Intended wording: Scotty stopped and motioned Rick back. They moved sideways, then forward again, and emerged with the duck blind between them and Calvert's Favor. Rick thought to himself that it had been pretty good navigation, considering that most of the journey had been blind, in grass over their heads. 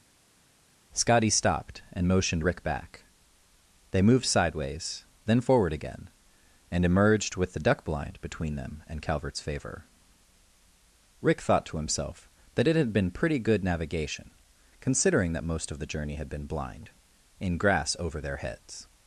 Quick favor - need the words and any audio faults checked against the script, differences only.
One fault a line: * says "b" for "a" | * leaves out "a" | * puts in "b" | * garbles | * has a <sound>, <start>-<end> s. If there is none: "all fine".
all fine